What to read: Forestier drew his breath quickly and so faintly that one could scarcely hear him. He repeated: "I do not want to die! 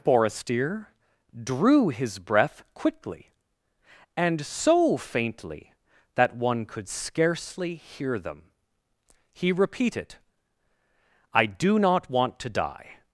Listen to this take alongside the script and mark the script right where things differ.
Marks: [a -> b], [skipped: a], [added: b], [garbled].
Forestier drew his breath quickly and so faintly that one could scarcely hear [him. -> them] He repeated: "I do not want to die!